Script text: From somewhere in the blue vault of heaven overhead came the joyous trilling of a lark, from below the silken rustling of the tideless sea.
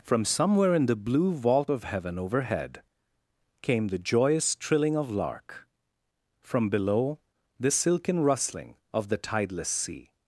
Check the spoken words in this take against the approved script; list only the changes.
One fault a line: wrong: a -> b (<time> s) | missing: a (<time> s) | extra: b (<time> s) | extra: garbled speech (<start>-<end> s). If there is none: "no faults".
missing: a (5.1 s)